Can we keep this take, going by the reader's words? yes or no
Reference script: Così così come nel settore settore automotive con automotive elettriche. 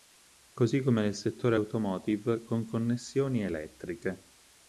no